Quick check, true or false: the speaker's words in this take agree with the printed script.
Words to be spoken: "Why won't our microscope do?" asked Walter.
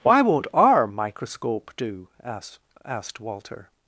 false